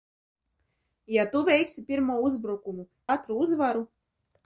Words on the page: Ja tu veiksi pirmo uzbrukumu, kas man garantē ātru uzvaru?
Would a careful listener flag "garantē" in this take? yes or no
yes